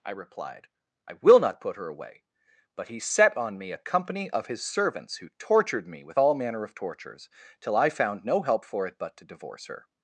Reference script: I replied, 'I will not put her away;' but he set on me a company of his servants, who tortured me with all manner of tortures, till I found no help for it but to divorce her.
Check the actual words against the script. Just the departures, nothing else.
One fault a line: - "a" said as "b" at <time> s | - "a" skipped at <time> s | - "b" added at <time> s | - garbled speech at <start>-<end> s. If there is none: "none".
none